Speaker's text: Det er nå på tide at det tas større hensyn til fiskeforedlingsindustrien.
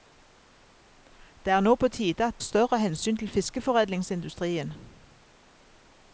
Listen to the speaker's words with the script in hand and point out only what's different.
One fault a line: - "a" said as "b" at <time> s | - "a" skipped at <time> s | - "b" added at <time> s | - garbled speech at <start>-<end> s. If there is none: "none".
- "det tas" skipped at 2.4 s